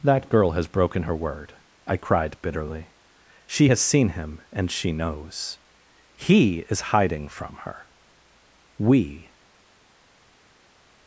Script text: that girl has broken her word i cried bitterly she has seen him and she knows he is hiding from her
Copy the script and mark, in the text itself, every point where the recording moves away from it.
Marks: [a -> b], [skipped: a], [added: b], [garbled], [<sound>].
that girl has broken her word i cried bitterly she has seen him and she knows he is hiding from her [added: we]